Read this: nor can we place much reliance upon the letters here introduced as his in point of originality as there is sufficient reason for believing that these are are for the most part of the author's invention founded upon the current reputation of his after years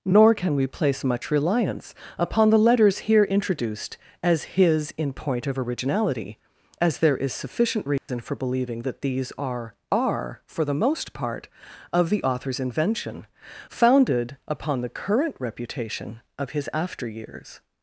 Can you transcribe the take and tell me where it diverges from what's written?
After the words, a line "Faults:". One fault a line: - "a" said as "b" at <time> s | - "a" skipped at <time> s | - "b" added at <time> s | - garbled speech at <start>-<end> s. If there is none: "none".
nor can we place much reliance upon the letters here introduced as his in point of originality as there is sufficient reason for believing that these are are for the most part of the author's invention founded upon the current reputation of his after years
Faults:
none